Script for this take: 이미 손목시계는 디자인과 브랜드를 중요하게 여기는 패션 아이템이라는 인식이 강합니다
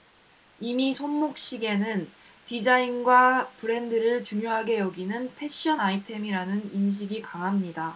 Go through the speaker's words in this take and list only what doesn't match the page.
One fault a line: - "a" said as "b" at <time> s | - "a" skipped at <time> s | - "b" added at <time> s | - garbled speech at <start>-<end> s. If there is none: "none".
none